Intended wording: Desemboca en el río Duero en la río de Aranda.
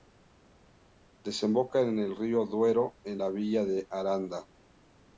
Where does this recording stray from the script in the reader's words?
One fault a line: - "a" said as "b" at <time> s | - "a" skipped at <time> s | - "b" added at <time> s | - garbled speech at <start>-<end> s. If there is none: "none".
- "río" said as "villa" at 3.3 s